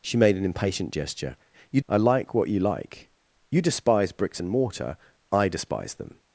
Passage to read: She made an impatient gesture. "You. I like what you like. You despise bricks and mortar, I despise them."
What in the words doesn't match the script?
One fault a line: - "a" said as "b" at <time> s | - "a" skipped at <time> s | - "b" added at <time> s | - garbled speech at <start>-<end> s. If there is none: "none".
none